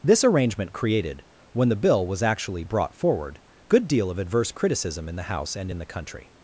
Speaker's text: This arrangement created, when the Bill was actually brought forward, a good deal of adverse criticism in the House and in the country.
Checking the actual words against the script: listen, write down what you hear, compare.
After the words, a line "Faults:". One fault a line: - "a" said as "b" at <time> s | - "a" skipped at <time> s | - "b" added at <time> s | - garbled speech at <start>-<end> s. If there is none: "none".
This arrangement created, when the Bill was actually brought forward, good deal of adverse criticism in the House and in the country.
Faults:
- "a" skipped at 3.4 s